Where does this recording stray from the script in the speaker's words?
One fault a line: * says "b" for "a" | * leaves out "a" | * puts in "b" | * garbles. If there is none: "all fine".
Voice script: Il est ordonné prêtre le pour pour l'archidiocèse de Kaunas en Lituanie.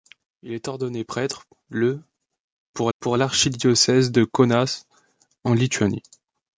all fine